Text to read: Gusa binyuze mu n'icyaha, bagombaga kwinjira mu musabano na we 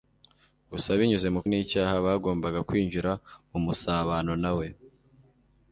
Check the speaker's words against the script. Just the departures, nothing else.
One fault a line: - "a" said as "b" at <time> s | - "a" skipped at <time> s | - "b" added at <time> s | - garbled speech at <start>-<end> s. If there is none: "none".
none